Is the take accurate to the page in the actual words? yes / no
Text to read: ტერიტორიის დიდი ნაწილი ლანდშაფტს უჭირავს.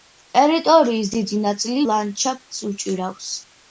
yes